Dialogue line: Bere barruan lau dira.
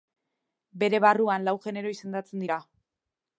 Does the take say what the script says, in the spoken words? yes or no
no